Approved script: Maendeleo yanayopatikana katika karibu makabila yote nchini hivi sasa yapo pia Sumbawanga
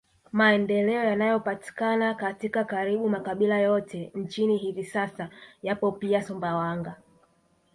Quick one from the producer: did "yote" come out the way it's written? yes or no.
yes